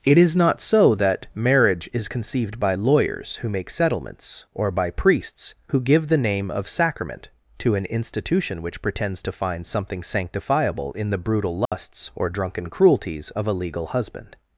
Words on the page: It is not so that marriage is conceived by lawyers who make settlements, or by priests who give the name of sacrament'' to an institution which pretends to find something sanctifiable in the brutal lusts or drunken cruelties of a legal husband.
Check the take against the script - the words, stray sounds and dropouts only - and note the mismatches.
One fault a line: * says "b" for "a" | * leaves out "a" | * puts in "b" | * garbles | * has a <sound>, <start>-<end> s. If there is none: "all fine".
* has a dropout, 11.7-11.7 s